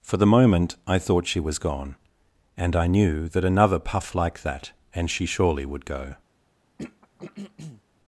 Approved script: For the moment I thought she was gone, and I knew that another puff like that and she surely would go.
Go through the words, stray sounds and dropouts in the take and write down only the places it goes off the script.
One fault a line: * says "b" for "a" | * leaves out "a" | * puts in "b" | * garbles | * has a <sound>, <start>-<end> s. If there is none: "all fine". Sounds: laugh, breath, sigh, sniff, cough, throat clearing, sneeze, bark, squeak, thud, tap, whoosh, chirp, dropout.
* has a throat clearing, 6.8-7.8 s